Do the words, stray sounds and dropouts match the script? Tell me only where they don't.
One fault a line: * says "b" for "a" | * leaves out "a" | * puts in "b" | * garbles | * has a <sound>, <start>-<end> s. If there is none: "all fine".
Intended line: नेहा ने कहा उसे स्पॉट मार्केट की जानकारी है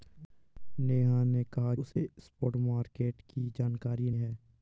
* has a dropout, 1.9-2.0 s